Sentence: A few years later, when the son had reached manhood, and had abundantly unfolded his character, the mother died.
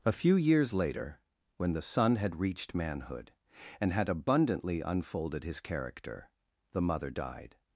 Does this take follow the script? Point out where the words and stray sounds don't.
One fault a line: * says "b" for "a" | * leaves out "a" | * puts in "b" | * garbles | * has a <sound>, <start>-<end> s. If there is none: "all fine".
all fine